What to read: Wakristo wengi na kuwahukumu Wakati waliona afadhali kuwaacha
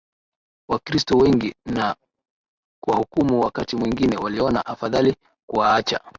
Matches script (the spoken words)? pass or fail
fail